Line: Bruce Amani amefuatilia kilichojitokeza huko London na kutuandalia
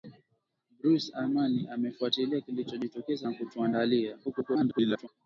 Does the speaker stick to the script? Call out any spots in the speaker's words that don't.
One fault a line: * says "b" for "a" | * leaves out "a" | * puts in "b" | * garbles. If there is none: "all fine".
* leaves out "huko London"
* garbles